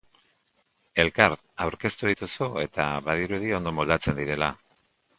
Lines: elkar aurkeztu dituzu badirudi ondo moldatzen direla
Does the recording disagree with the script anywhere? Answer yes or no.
yes